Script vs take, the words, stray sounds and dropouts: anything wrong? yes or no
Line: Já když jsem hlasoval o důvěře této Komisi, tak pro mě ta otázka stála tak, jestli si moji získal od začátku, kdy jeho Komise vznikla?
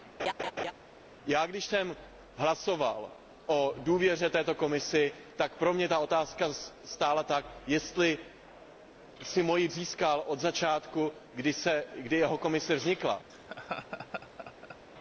yes